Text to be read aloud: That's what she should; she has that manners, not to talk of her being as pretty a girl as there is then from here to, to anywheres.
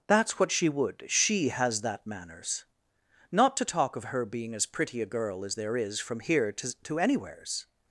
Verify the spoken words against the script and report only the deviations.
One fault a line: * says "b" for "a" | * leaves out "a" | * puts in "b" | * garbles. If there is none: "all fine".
* says "would" for "should"
* leaves out "then"